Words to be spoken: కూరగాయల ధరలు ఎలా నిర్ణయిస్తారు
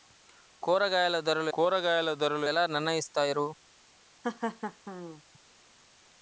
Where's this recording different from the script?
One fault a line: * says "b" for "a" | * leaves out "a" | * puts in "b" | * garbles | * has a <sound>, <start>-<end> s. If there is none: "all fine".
* puts in "కూరగాయల ధరలు"
* has a laugh, 4.2-5.2 s